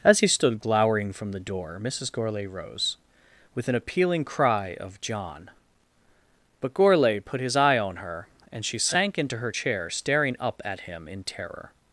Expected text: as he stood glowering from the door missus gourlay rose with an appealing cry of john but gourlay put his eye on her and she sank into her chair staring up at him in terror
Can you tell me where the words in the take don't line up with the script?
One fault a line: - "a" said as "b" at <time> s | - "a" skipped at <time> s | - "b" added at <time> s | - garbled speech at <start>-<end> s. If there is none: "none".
none